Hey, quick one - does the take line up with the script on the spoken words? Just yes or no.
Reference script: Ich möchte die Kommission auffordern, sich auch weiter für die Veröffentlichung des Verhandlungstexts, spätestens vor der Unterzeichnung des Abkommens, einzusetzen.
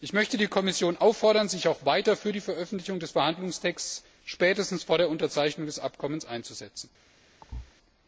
yes